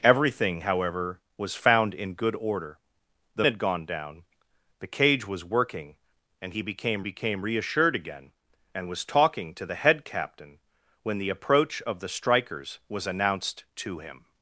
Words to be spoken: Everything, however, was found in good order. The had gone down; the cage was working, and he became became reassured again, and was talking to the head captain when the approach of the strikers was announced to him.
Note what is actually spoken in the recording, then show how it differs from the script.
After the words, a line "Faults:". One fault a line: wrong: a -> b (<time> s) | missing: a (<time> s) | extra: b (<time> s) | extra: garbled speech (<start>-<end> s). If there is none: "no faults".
Everything, however, was found in good order. The had gone down; the cage was working, and he became became reassured again, and was talking to the head captain when the approach of the strikers was announced to him.
Faults:
no faults